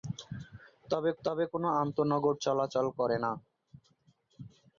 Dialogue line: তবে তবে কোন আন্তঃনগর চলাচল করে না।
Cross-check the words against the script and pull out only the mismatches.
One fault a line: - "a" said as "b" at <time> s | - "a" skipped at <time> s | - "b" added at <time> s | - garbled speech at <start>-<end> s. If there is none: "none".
none